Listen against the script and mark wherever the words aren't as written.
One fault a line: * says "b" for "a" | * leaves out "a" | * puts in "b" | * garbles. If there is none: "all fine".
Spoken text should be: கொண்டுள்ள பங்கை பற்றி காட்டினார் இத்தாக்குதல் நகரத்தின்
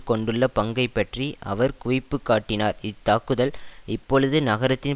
* puts in "அவர் குவிப்பு"
* puts in "இப்பொழுது"